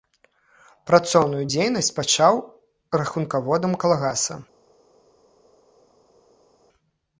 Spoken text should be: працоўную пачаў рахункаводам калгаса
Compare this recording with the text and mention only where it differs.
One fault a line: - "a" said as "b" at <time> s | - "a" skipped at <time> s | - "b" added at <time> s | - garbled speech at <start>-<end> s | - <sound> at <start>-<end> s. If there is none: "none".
- "дзейнасць" added at 1.5 s